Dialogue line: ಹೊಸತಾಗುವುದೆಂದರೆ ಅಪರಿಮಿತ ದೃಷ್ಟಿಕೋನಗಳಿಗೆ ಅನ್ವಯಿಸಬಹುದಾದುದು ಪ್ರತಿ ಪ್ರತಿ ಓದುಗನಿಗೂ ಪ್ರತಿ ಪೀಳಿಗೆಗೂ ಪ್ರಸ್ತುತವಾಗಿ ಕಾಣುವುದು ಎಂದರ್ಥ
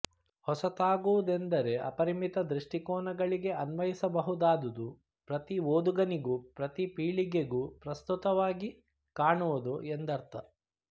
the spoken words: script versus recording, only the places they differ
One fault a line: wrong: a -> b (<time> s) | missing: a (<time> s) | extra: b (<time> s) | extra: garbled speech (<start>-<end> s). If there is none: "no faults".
missing: ಪ್ರತಿ (5.6 s)